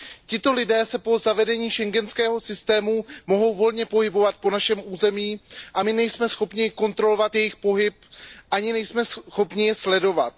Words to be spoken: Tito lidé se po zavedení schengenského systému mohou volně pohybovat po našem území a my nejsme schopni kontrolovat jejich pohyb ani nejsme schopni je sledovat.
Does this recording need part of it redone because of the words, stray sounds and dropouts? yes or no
no